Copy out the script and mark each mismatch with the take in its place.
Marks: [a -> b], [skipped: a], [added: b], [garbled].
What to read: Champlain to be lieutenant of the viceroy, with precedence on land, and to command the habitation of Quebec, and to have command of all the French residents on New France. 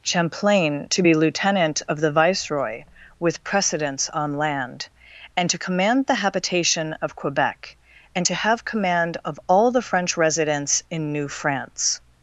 Champlain to be lieutenant of the viceroy, with precedence on land, and to command the habitation of Quebec, and to have command of all the French residents [on -> in] New France.